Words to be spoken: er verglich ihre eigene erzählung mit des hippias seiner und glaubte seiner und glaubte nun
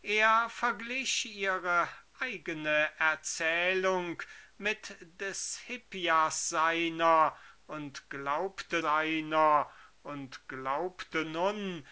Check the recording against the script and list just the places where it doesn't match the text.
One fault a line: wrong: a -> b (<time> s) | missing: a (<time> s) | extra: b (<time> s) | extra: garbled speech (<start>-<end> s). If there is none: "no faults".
no faults